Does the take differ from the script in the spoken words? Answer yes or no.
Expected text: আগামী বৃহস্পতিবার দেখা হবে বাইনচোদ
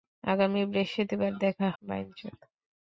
yes